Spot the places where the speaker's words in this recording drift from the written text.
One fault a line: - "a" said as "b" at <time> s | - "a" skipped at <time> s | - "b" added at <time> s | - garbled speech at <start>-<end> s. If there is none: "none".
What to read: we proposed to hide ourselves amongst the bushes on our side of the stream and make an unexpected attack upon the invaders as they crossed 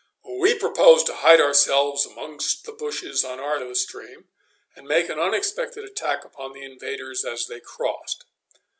- "side" skipped at 3.6 s